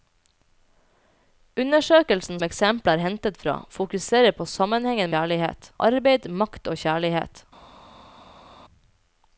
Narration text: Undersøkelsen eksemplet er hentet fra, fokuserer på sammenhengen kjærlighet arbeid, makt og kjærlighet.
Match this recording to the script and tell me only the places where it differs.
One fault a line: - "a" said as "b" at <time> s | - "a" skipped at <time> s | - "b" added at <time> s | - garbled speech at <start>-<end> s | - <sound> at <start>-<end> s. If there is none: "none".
none